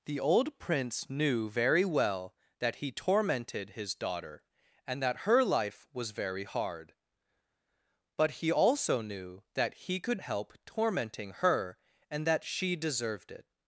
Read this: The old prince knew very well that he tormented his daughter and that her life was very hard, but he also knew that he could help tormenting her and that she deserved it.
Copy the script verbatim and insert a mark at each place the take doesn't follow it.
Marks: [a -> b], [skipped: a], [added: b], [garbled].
The old prince knew very well that he tormented his daughter and that her life was very hard, but he also knew that he could help tormenting her and that she deserved it.